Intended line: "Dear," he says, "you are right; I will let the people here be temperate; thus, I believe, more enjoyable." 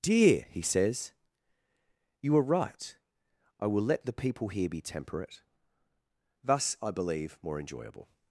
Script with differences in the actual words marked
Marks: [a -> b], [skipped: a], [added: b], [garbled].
"Dear," he says, "you are right; I will let the people here be temperate; thus, I believe, more enjoyable."